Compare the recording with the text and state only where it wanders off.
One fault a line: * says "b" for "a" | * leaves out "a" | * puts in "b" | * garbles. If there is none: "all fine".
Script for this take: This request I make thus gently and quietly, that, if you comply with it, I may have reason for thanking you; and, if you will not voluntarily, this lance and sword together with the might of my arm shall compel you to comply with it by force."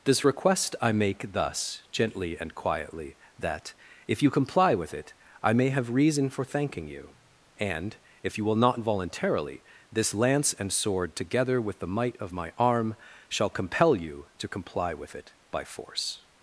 all fine